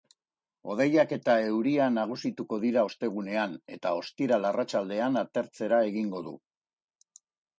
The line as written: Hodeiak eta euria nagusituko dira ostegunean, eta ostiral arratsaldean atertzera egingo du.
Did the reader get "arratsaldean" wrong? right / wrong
right